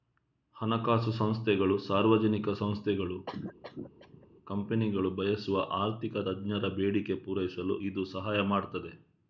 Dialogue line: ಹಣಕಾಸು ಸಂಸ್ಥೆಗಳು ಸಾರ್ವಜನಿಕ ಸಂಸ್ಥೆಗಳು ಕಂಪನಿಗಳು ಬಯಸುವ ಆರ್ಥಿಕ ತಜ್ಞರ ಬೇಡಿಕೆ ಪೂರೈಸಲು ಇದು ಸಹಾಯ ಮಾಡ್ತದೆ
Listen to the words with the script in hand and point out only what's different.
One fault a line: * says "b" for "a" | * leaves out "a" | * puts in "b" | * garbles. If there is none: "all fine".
all fine